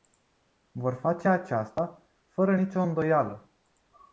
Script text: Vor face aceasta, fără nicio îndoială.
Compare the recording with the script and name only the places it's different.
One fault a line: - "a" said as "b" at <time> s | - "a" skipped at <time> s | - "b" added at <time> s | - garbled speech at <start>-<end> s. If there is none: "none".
none